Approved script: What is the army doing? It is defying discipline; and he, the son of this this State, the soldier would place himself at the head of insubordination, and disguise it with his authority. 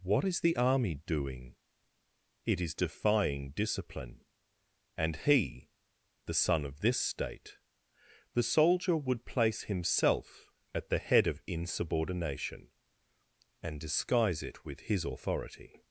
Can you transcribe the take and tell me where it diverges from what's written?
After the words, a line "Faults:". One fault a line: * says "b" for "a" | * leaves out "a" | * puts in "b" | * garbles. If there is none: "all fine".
What is the army doing? It is defying discipline; and he, the son of this State, the soldier would place himself at the head of insubordination, and disguise it with his authority.
Faults:
* leaves out "this"